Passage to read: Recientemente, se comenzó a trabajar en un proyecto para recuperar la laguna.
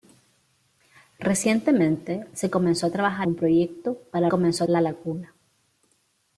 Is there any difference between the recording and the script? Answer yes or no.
yes